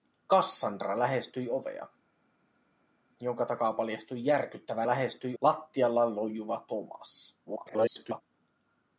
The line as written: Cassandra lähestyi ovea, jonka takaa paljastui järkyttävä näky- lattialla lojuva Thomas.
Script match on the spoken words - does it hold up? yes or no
no